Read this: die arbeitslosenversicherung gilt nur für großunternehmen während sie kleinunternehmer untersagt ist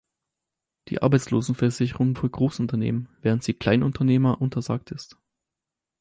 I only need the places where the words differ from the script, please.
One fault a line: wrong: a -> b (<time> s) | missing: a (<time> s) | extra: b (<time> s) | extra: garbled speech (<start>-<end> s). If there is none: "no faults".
missing: gilt nur (2.1 s)